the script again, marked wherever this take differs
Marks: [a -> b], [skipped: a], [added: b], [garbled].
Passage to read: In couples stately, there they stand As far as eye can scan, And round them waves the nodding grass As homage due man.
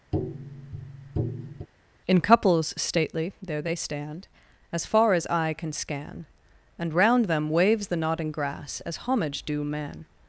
In couples stately, there they stand As far as eye can scan, And round them waves the nodding grass As homage due man.